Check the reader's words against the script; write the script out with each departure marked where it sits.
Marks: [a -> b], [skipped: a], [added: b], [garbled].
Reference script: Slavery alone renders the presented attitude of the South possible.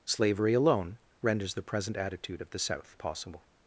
Slavery alone renders the [presented -> present] attitude of the South possible.